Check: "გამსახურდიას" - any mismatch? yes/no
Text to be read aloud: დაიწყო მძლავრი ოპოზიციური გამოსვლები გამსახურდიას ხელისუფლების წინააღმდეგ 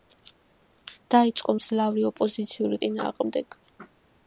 yes